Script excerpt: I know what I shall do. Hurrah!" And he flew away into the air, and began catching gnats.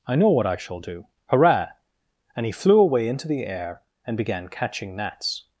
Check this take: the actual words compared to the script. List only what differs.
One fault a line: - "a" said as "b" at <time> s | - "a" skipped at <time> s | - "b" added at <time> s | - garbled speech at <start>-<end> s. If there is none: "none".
none